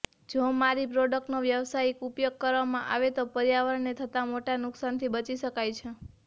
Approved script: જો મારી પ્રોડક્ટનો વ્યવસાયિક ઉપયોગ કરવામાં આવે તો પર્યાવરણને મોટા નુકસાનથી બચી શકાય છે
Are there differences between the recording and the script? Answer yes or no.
yes